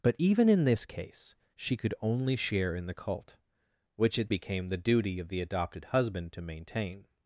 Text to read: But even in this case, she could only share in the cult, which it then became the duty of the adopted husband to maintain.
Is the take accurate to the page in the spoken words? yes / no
no